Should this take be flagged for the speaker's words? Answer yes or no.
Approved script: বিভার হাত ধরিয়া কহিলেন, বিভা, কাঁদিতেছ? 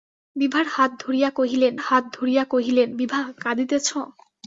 yes